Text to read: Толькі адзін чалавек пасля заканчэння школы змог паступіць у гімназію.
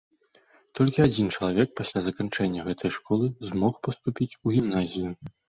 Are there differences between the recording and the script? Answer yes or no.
yes